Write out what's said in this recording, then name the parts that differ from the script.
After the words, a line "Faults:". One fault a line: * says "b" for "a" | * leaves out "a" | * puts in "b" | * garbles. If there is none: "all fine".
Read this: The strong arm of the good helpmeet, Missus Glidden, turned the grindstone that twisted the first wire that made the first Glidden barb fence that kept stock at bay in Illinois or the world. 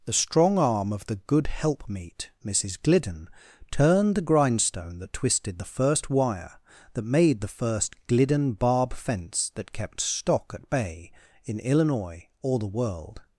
The strong arm of the good helpmeet, Missus Glidden, turned the grindstone that twisted the first wire that made the first Glidden barb fence that kept stock at bay in Illinois or the world.
Faults:
all fine